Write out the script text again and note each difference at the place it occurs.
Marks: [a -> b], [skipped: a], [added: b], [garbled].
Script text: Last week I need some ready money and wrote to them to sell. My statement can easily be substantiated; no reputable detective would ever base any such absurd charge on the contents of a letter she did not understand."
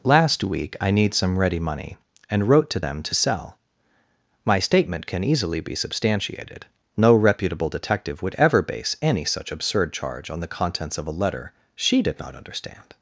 Last week I need some ready money and wrote to them to sell. My statement can easily be substantiated; no reputable detective would ever base any such absurd charge on the contents of a letter she did not understand."